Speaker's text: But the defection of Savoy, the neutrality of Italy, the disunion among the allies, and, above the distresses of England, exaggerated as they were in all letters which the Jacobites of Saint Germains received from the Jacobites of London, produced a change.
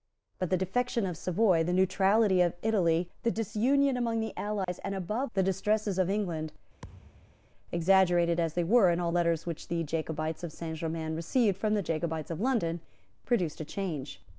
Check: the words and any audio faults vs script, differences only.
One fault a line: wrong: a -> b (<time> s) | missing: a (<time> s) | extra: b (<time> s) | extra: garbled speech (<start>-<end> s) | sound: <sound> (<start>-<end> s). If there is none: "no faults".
sound: dropout (4.6-4.7 s)
sound: thud (6.8-7.5 s)